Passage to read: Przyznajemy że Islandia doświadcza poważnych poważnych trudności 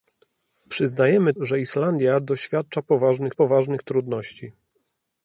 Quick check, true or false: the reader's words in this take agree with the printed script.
true